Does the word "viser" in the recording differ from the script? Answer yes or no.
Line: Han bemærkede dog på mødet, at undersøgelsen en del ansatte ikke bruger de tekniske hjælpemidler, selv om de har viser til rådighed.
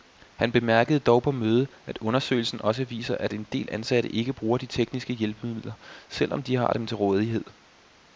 yes